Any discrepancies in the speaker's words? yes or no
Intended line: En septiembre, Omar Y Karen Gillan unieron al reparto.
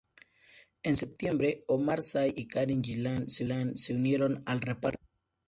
yes